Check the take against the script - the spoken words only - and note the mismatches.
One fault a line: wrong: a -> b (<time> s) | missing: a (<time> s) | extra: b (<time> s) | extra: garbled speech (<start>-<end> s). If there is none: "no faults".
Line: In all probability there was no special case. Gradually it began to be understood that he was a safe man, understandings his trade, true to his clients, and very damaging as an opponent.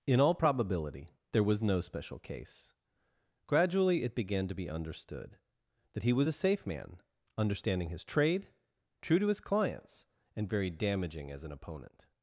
wrong: understandings -> understanding (7.4 s)